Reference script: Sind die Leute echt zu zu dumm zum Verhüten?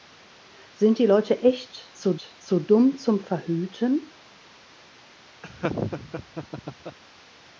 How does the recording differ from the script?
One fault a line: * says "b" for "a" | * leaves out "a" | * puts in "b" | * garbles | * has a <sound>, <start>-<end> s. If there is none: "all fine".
* has a laugh, 5.4-7.0 s